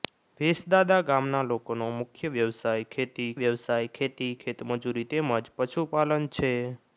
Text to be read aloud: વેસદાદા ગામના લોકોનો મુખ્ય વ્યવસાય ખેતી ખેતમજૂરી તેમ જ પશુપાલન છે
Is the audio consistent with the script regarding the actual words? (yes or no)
no